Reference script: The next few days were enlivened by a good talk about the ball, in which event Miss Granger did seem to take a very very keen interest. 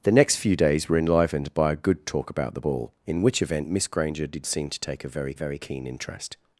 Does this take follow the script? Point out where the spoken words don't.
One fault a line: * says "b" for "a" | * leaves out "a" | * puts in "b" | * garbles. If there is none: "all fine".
all fine